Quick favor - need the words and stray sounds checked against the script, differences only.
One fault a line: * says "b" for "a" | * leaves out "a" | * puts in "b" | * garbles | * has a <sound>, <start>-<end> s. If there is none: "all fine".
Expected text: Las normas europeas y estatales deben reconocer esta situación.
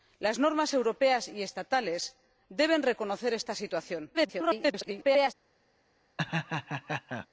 * garbles
* has a laugh, 6.2-7.3 s